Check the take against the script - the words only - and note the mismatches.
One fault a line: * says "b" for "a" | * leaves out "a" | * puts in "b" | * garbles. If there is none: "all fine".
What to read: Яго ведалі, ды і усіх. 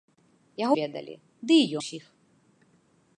all fine